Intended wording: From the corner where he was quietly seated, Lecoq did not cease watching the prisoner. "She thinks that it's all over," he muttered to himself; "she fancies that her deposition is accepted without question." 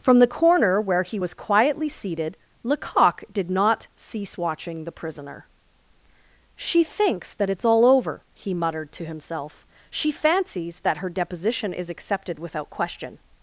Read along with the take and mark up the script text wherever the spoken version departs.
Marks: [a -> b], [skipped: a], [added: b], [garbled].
From the corner where he was quietly seated, Lecoq did not cease watching the prisoner. "She thinks that it's all over," he muttered to himself; "she fancies that her deposition is accepted without question."